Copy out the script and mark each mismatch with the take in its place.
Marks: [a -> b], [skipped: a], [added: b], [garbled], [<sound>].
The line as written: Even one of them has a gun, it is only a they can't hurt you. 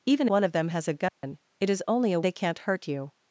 Even one of them has a gun, [dropout] it is only a they can't hurt you.